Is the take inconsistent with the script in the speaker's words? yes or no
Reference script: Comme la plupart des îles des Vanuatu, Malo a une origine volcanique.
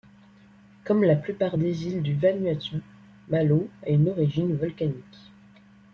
yes